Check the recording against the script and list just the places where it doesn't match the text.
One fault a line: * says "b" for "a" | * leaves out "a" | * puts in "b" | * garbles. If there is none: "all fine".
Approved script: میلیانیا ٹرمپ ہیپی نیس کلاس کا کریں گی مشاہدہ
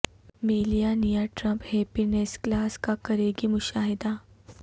all fine